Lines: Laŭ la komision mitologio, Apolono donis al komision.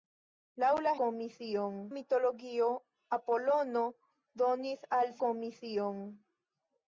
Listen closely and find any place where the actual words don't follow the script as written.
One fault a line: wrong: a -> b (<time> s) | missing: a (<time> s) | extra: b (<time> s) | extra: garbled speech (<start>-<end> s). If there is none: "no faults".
no faults